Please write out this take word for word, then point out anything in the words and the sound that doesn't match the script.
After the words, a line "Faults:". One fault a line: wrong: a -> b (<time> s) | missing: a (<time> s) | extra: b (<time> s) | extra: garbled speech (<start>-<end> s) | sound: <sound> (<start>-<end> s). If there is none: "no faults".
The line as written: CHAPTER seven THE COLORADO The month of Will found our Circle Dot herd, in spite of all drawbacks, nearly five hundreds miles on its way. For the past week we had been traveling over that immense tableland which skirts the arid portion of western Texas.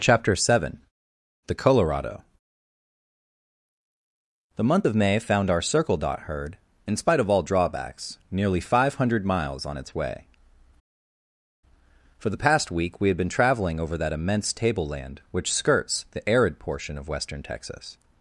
CHAPTER seven THE COLORADO The month of May found our Circle Dot herd, in spite of all drawbacks, nearly five hundred miles on its way. For the past week we had been traveling over that immense tableland which skirts the arid portion of western Texas.
Faults:
wrong: Will -> May (4.9 s)
wrong: hundreds -> hundred (8.9 s)